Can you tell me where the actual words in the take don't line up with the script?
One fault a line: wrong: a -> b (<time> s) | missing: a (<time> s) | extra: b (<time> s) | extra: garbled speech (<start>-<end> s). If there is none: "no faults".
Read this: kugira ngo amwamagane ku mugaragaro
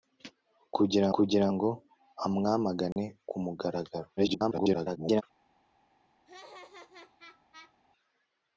extra: kugira (1.1 s)
extra: garbled speech (4.2-5.2 s)